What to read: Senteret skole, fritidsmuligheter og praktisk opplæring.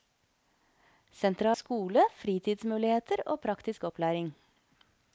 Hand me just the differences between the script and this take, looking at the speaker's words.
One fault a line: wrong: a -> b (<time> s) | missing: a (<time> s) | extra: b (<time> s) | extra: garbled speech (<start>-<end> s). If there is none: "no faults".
no faults